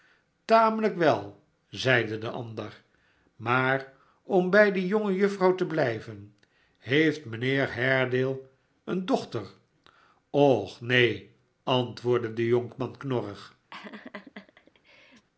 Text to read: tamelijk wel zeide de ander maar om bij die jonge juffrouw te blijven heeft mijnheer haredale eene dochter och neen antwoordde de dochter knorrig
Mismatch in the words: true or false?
true